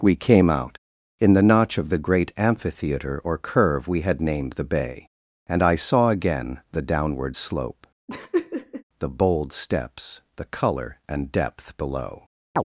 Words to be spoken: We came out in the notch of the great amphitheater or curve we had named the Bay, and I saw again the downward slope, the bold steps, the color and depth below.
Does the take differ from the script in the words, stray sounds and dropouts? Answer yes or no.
yes